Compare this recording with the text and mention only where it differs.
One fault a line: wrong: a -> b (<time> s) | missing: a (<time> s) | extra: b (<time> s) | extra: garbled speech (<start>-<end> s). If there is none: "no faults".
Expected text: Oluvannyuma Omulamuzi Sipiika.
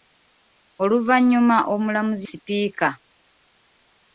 no faults